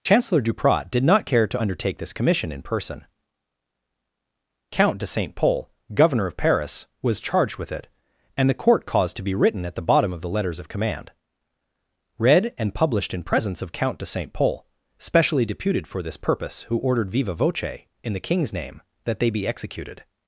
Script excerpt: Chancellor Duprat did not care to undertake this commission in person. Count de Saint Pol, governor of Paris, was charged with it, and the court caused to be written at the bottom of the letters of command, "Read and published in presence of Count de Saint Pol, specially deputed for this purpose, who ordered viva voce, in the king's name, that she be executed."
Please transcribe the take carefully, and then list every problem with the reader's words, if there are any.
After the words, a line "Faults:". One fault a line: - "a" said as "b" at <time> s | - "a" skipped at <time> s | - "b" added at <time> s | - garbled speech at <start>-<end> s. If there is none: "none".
Chancellor Duprat did not care to undertake this commission in person. Count de Saint Pol, governor of Paris, was charged with it, and the court caused to be written at the bottom of the letters of command, "Read and published in presence of Count de Saint Pol, specially deputed for this purpose, who ordered viva voce, in the king's name, that they be executed."
Faults:
- "she" said as "they" at 19.2 s